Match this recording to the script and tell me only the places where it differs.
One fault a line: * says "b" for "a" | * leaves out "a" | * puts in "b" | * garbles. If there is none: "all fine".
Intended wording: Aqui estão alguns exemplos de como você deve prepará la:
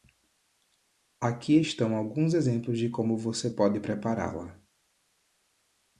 * says "pode" for "deve"